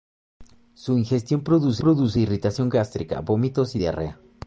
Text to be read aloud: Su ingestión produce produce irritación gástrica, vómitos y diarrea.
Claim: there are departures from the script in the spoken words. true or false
false